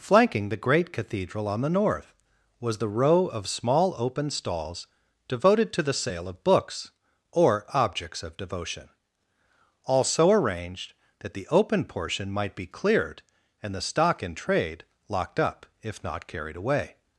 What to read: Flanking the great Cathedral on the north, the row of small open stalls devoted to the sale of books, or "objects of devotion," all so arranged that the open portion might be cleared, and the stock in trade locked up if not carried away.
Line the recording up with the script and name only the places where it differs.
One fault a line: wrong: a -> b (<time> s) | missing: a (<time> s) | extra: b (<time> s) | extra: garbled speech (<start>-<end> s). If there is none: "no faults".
extra: was (2.6 s)